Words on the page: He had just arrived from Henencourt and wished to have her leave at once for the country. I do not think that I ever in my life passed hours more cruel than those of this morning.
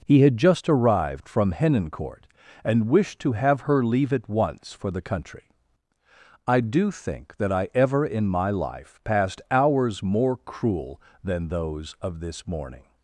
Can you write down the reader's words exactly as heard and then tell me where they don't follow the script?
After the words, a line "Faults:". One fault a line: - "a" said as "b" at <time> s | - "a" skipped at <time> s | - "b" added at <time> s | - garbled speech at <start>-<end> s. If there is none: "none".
He had just arrived from Henencourt and wished to have her leave at once for the country. I do think that I ever in my life passed hours more cruel than those of this morning.
Faults:
- "not" skipped at 6.9 s